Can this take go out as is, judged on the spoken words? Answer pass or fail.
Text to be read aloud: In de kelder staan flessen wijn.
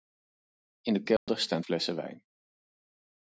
pass